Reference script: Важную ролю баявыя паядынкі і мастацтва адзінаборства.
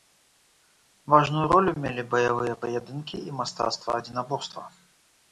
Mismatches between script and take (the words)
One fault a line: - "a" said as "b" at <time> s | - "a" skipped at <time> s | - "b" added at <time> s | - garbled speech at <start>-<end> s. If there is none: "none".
- "мелі" added at 1.8 s